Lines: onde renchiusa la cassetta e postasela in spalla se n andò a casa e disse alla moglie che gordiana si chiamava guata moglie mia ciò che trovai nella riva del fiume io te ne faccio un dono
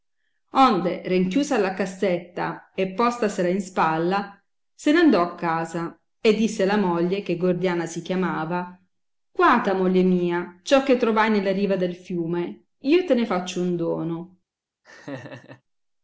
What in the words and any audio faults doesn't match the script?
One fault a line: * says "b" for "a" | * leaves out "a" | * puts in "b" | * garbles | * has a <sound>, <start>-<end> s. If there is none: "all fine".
* has a laugh, 14.8-15.6 s